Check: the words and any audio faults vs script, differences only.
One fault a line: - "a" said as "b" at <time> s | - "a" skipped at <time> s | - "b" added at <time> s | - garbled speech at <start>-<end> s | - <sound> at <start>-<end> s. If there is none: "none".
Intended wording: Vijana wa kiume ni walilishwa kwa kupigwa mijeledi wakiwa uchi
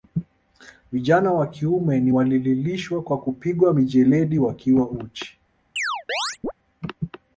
- chirp at 5.8-6.5 s